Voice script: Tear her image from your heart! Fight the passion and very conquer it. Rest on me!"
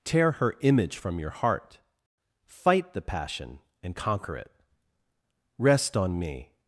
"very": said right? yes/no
no